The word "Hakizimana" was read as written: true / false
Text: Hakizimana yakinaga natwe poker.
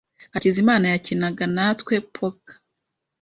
true